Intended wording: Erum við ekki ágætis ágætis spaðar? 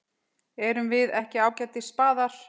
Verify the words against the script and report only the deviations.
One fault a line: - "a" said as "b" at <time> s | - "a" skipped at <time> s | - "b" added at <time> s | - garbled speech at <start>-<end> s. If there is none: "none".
- "ágætis" skipped at 1.9 s